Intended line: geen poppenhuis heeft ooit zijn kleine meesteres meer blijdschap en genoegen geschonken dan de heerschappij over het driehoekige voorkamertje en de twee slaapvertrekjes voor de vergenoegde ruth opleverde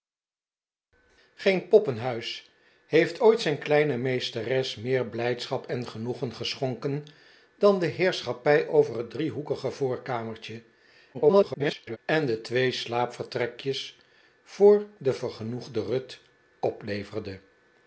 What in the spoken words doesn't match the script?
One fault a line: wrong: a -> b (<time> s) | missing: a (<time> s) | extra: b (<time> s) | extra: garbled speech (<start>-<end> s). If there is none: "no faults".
extra: garbled speech (11.1-12.0 s)